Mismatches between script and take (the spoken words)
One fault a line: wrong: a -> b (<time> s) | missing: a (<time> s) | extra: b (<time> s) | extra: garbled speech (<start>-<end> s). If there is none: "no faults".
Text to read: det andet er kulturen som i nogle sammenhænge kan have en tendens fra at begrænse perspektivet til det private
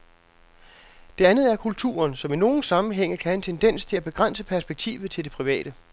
wrong: fra -> til (3.8 s)